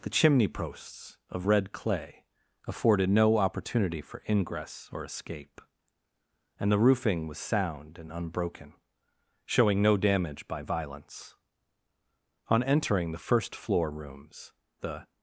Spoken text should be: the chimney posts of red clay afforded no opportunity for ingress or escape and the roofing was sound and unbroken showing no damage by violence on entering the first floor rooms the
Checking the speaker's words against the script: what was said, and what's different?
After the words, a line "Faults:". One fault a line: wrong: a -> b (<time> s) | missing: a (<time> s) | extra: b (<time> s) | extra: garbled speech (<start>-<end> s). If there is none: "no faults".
the chimney posts of red clay afforded no opportunity for ingress or escape and the roofing was sound and unbroken showing no damage by violence on entering the first floor rooms the
Faults:
no faults